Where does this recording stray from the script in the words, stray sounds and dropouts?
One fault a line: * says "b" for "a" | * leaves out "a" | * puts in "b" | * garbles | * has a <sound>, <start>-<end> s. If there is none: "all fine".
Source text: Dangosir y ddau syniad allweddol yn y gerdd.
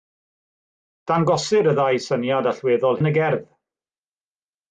all fine